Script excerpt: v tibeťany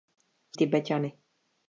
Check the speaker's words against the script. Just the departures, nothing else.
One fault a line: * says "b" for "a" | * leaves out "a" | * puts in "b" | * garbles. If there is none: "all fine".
all fine